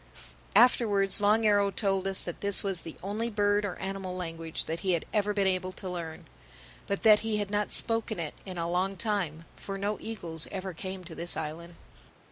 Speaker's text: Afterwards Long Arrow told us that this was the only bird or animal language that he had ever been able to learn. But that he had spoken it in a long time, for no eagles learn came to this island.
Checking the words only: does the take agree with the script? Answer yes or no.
no